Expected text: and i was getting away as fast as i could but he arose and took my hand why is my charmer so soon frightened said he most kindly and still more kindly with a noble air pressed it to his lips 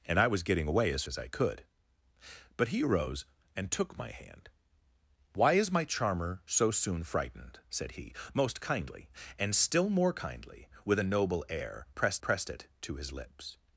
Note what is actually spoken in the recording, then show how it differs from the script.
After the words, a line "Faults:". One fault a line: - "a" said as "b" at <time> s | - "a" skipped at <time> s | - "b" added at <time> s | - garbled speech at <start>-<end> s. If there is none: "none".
and i was getting away as as i could but he arose and took my hand why is my charmer so soon frightened said he most kindly and still more kindly with a noble air pressed pressed it to his lips
Faults:
- "fast" skipped at 1.0 s
- "pressed" added at 12.2 s